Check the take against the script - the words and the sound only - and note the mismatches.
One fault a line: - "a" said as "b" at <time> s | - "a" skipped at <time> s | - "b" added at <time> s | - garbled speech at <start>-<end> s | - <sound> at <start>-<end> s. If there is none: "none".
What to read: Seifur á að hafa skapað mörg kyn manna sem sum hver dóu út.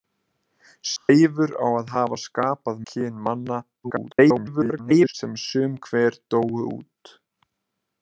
- dropout at 1.0-1.1 s
- "mörg" skipped at 2.8 s
- garbled speech at 3.8-5.1 s